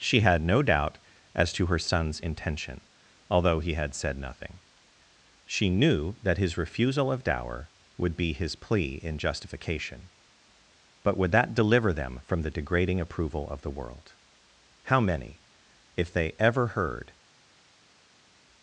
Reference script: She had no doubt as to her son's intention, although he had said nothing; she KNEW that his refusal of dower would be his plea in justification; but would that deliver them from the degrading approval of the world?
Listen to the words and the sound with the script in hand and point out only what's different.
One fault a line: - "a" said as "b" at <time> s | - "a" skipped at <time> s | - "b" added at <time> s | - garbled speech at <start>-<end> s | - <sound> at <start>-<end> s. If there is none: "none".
- "How many if they ever heard" added at 14.8 s